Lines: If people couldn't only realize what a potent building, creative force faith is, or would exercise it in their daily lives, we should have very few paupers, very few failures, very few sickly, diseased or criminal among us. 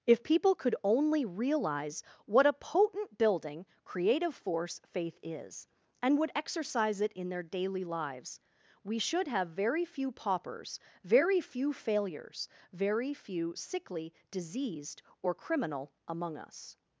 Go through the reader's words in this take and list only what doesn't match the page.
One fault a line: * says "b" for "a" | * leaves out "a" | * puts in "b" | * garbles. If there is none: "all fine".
* says "could" for "couldn't"
* says "and" for "or"